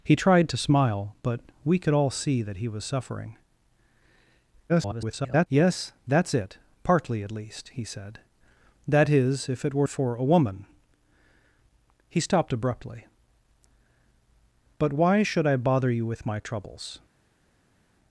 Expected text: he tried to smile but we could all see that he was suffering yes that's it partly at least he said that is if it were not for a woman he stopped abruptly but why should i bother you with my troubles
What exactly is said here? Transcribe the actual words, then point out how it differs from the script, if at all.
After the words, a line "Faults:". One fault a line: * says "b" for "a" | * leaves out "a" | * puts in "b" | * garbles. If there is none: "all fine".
he tried to smile but we could all see that he was suffering [garbled] yes that's it partly at least he said that is if it were for a woman he stopped abruptly but why should i bother you with my troubles
Faults:
* garbles
* leaves out "not"